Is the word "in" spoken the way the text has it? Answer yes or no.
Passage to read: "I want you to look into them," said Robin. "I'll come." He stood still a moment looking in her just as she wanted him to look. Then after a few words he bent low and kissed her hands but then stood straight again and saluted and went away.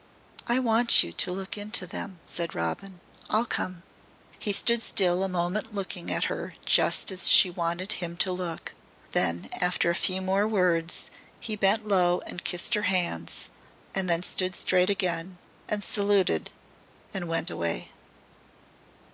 no